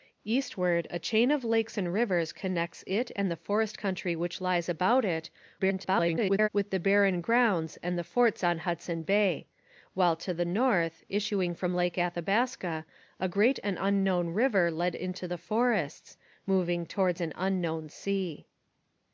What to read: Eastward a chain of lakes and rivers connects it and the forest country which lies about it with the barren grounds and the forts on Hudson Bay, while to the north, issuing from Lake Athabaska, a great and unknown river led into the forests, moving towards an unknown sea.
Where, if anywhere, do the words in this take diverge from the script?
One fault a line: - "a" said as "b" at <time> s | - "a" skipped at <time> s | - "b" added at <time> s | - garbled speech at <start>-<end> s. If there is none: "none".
- garbled speech at 5.6-6.5 s